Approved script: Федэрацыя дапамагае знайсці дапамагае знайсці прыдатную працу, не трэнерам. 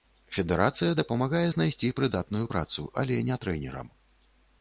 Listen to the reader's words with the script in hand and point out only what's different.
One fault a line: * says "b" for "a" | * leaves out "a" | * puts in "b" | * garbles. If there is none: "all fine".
* leaves out "дапамагае знайсці"
* puts in "але"